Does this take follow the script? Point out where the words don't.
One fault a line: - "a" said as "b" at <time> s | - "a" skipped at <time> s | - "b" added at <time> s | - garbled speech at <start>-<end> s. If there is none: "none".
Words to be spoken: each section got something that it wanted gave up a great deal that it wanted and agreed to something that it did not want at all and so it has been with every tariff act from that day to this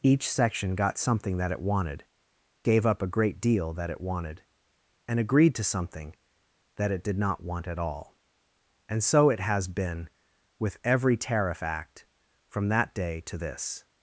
none